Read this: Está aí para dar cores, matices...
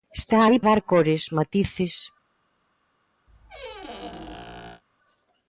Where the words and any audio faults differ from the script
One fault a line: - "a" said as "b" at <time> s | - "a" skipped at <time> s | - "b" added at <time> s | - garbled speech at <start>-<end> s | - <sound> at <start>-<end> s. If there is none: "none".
- "para" skipped at 0.6 s
- squeak at 3.3-4.8 s